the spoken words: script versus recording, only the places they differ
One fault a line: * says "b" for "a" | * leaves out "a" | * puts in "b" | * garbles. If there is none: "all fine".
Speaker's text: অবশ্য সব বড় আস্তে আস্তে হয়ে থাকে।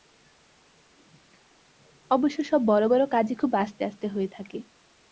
* puts in "বড় কাজই খুব"